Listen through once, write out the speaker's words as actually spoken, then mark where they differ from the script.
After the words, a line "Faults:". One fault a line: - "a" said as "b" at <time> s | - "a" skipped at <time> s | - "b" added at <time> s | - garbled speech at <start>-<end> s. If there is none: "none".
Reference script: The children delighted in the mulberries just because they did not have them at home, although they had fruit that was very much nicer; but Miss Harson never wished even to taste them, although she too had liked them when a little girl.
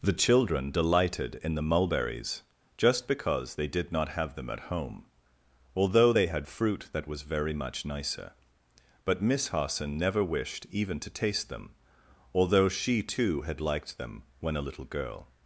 The children delighted in the mulberries just because they did not have them at home, although they had fruit that was very much nicer; but Miss Harson never wished even to taste them, although she too had liked them when a little girl.
Faults:
none